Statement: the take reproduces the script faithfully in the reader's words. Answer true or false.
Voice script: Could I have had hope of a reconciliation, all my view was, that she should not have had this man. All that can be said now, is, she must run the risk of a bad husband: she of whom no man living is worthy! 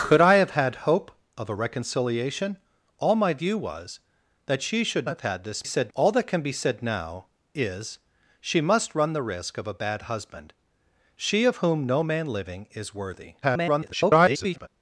false